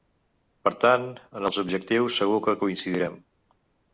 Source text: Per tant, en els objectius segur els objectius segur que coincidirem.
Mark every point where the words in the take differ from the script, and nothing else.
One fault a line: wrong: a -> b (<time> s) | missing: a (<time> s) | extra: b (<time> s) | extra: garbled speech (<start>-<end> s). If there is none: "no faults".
missing: els objectius segur (2.4 s)